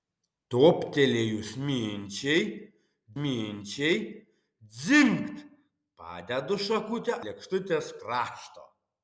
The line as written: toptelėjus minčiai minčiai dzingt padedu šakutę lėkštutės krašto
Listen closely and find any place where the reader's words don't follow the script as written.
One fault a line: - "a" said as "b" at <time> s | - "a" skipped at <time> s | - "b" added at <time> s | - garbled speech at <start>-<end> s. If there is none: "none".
none